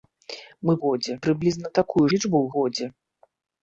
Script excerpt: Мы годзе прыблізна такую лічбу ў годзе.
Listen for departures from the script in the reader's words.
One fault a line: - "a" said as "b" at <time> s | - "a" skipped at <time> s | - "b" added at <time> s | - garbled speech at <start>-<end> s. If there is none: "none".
none